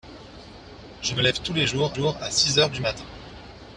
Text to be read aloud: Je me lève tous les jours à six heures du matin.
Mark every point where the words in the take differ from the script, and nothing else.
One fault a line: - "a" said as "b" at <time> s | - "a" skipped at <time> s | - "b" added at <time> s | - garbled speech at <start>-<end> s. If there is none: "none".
- "jours" added at 1.9 s